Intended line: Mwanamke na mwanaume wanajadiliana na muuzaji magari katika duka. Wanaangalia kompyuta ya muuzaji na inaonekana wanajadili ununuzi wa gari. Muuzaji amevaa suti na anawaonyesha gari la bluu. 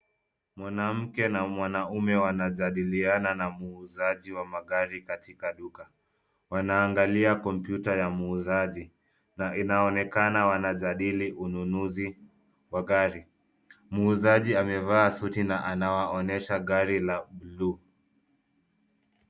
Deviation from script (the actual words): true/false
true